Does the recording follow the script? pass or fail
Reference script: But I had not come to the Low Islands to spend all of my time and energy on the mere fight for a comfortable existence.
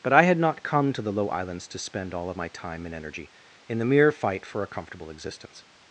fail